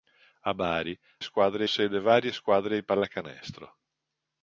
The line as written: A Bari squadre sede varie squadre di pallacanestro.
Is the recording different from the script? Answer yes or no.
no